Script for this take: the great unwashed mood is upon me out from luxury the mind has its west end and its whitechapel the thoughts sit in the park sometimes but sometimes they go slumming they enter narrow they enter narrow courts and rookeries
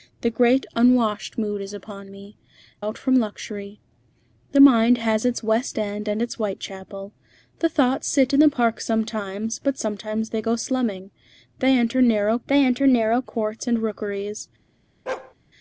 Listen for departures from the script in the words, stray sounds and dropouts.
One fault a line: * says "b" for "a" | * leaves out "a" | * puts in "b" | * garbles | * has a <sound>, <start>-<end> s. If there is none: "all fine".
* has a bark, 15.1-15.3 s